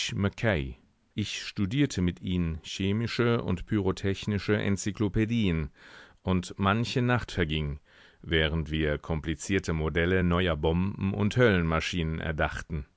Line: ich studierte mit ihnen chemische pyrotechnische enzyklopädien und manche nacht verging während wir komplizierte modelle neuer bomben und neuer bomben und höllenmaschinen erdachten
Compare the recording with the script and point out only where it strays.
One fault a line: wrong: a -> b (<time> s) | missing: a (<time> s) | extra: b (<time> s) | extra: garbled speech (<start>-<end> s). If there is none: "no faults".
extra: und (3.4 s)
missing: neuer bomben und (11.4 s)